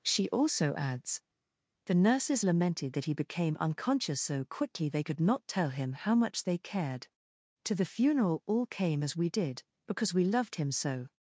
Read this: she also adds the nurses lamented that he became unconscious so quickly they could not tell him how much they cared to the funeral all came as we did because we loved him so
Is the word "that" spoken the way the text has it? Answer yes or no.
yes